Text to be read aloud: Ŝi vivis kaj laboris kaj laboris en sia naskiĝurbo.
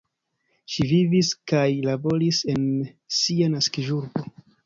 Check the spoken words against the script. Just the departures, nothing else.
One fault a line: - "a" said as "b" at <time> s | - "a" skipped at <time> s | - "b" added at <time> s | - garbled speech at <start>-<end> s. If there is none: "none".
- "kaj laboris" skipped at 2.4 s